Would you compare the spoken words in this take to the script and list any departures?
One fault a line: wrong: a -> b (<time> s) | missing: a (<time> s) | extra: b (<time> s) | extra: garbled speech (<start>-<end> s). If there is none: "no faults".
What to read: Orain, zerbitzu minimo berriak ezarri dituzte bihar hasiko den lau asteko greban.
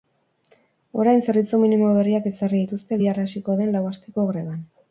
no faults